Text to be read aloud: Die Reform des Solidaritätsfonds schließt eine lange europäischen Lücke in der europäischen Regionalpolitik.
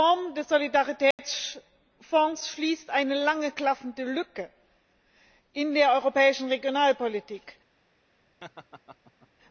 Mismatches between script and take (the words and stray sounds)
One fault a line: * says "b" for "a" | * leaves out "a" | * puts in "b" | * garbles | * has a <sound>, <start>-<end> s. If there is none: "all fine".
* has a dropout, 1.1-1.2 s
* says "klaffende" for "europäischen"
* has a laugh, 8.4-9.3 s